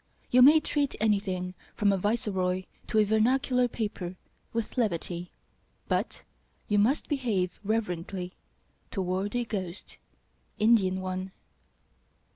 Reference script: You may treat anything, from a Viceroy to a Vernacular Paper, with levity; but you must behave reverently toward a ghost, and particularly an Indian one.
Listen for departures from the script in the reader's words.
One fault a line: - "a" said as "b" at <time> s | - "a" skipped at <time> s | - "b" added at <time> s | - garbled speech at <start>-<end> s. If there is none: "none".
- "and particularly an" skipped at 10.0 s